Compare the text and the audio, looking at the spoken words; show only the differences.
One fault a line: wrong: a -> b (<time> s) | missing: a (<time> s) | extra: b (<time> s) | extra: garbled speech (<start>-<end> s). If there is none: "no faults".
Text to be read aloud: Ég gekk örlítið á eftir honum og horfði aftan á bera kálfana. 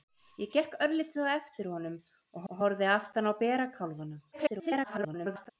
extra: og (2.5 s)
extra: garbled speech (4.3-5.5 s)